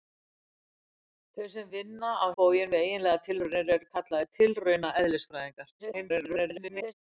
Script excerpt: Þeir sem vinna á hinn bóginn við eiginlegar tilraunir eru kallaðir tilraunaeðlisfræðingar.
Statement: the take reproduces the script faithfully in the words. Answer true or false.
false